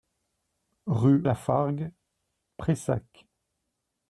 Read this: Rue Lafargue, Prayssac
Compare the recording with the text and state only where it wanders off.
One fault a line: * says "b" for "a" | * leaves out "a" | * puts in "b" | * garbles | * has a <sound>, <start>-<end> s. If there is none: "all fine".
all fine